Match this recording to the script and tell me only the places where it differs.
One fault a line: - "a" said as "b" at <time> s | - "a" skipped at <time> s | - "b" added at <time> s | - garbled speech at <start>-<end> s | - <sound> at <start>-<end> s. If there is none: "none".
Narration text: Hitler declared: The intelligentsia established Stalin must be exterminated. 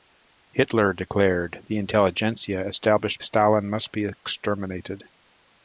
none